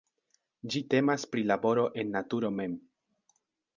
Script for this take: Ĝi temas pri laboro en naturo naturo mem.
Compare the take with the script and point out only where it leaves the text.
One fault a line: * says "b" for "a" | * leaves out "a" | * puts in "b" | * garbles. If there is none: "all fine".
* leaves out "naturo"